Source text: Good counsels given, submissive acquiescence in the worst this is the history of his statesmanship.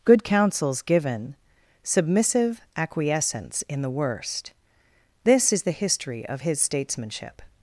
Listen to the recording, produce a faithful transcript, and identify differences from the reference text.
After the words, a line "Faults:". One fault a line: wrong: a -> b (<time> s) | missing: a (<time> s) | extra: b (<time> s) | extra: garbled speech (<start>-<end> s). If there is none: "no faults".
Good counsels given, submissive acquiescence in the worst this is the history of his statesmanship.
Faults:
no faults